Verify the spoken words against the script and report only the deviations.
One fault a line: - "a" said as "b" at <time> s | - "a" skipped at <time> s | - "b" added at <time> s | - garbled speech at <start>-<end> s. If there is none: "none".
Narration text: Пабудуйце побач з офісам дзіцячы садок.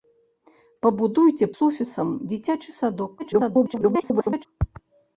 - "побач" skipped at 1.5 s
- garbled speech at 3.2-4.5 s